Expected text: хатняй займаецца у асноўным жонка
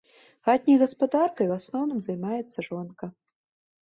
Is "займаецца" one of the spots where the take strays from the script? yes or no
yes